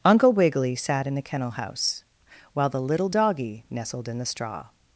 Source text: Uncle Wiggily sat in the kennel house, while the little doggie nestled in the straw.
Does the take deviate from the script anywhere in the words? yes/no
no